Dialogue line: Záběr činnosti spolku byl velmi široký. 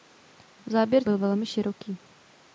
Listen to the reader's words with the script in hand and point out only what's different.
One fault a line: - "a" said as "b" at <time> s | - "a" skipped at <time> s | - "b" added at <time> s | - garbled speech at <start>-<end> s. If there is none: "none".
- "činnosti spolku" skipped at 1.1 s